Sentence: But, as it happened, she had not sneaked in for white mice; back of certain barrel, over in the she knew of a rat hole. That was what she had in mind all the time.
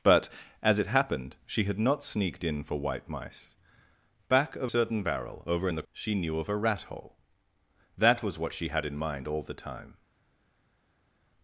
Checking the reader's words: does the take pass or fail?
pass